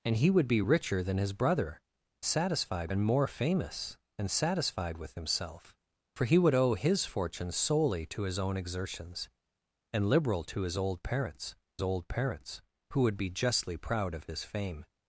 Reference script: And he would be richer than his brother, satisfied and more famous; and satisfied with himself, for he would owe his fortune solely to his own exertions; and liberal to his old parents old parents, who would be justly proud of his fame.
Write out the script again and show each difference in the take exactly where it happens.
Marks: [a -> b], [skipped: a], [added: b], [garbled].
And he would be richer than his brother, satisfied and more famous; and satisfied with himself, for he would owe his fortune solely to his own exertions; and liberal to his old parents old parents, who would be justly proud of his fame.